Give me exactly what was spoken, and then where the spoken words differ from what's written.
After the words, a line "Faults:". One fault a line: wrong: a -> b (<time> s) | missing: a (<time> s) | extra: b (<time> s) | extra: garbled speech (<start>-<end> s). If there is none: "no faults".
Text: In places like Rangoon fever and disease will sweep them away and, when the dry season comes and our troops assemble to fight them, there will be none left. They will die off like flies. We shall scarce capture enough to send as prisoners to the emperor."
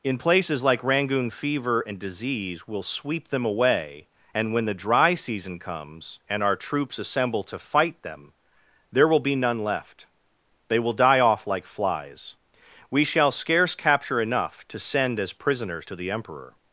In places like Rangoon fever and disease will sweep them away and, when the dry season comes and our troops assemble to fight them, there will be none left. They will die off like flies. We shall scarce capture enough to send as prisoners to the emperor."
Faults:
no faults